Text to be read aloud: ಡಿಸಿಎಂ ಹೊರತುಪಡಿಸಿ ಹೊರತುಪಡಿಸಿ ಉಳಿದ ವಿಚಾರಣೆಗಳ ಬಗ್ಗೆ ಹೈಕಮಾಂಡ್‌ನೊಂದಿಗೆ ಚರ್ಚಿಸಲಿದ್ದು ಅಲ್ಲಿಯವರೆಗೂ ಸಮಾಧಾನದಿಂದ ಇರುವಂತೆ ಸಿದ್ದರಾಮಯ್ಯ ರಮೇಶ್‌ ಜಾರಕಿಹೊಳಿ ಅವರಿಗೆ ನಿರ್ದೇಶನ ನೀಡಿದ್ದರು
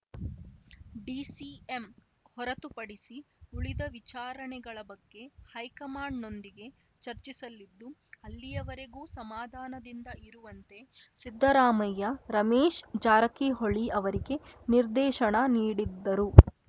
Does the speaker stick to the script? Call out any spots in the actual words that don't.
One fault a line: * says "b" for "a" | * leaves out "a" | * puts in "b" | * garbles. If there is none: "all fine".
* leaves out "ಹೊರತುಪಡಿಸಿ"